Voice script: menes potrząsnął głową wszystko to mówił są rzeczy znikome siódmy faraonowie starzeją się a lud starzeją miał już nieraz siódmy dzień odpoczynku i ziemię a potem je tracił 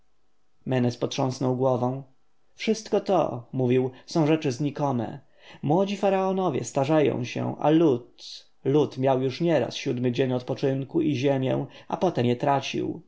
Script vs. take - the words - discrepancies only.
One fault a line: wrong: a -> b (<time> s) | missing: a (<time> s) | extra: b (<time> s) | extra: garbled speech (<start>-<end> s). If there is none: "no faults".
wrong: siódmy -> młodzi (5.6 s)
wrong: starzeją -> lud (8.7 s)